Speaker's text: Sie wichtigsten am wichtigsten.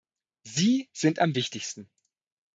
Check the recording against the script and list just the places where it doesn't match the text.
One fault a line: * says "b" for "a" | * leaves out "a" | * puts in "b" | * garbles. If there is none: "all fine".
* says "sind" for "wichtigsten"